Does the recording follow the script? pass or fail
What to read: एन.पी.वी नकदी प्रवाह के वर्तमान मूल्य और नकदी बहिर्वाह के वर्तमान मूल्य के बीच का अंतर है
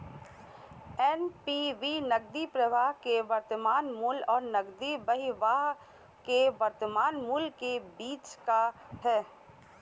fail